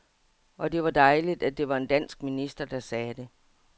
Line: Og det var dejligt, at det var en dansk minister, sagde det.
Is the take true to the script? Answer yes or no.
no